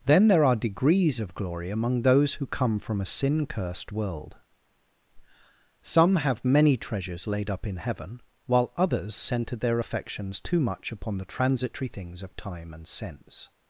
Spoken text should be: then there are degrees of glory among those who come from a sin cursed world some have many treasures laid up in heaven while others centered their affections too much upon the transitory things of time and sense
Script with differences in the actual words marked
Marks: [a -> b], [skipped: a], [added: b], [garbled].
then there are degrees of glory among those who come from a sin cursed world some have many treasures laid up in heaven while others centered their affections too much upon the transitory things of time and sense